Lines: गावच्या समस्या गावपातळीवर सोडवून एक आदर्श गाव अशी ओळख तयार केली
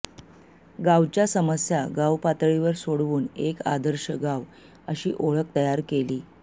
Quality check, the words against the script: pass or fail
pass